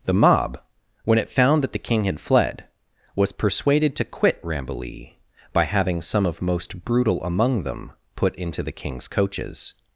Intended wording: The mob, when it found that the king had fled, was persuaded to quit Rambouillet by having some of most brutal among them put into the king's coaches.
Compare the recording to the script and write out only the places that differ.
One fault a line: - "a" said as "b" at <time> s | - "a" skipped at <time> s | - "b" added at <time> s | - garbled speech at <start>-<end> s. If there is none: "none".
none